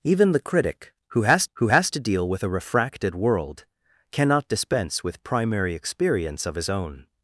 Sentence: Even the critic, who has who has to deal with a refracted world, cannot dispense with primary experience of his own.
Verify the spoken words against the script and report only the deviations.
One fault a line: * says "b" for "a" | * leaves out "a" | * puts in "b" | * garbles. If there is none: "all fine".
all fine